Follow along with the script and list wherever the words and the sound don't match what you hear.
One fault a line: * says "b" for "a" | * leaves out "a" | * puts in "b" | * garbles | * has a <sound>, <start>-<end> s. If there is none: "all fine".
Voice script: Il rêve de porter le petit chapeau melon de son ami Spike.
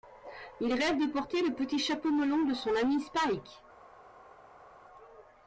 all fine